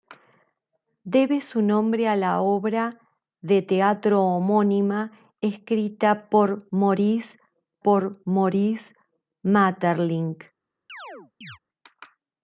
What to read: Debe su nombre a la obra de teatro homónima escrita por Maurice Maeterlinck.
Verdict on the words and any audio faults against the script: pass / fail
fail